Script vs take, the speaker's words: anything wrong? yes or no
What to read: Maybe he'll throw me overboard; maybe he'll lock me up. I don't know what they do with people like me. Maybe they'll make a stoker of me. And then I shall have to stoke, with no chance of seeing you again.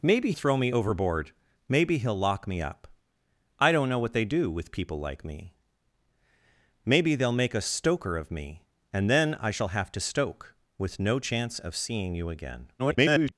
yes